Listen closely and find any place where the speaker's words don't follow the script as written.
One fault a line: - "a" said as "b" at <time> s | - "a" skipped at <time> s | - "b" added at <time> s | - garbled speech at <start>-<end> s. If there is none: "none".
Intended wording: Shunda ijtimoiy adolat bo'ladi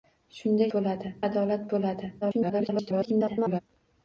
- "ijtimoiy" said as "bo'ladi" at 0.8 s
- garbled speech at 2.2-3.6 s